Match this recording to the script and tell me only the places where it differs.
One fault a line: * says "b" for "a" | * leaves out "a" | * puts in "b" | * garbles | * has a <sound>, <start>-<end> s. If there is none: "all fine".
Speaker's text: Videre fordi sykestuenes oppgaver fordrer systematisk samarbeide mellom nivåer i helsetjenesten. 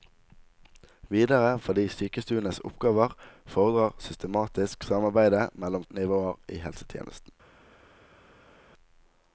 all fine